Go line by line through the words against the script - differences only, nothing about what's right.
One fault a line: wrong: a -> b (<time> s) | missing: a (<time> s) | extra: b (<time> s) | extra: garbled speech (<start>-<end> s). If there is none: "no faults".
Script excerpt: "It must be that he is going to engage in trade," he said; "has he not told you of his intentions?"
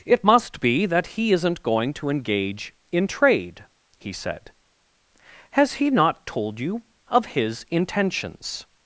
wrong: is -> isn't (1.3 s)